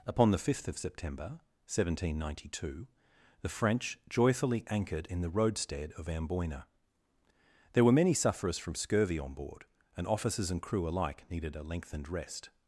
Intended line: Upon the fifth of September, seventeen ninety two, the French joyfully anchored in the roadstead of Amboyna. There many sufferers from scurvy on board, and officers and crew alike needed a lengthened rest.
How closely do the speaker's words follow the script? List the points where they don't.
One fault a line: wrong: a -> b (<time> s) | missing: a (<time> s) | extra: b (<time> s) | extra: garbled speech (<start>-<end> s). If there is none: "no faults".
extra: were (7.8 s)